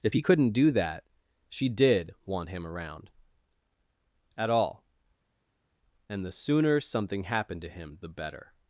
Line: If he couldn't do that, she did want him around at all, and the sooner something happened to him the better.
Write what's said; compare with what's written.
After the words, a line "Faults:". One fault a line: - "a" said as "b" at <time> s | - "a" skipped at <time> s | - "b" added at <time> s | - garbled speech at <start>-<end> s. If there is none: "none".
If he couldn't do that, she did want him around at all, and the sooner something happened to him the better.
Faults:
none